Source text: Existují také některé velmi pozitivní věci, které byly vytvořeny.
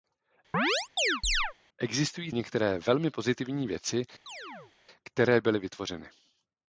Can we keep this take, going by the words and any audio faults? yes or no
no